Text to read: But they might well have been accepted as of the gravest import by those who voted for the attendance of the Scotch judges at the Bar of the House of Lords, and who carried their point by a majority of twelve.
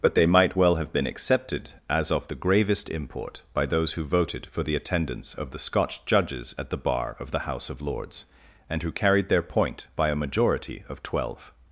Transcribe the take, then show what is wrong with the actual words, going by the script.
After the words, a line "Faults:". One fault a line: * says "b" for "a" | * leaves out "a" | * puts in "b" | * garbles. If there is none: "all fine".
But they might well have been accepted as of the gravest import by those who voted for the attendance of the Scotch judges at the Bar of the House of Lords, and who carried their point by a majority of twelve.
Faults:
all fine